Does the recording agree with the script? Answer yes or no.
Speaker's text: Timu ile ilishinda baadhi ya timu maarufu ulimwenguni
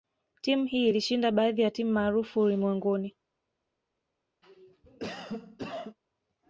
no